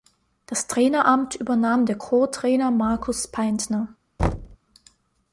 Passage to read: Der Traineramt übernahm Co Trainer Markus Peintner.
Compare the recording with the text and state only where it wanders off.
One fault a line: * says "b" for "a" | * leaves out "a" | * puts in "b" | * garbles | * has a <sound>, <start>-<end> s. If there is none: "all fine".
* says "Das" for "Der"
* puts in "der"
* has a thud, 4.2-4.6 s